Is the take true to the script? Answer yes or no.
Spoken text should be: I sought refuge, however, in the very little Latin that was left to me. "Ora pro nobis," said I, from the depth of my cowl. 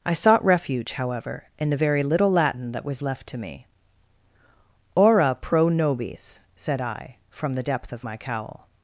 yes